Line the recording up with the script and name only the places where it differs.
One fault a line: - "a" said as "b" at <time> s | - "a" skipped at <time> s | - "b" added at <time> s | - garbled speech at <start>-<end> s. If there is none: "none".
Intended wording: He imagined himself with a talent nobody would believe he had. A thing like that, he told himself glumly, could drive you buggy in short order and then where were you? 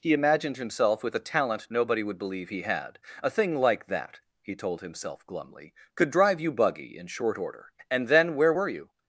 none